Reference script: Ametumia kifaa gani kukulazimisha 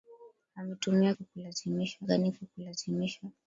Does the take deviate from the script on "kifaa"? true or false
true